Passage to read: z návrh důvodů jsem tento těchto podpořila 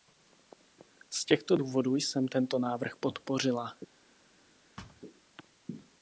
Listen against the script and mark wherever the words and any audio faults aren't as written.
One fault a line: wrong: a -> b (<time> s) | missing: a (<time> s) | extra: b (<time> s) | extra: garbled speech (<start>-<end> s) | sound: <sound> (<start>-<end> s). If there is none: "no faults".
wrong: návrh -> těchto (1.2 s)
wrong: těchto -> návrh (2.6 s)
sound: thud (4.8-5.0 s)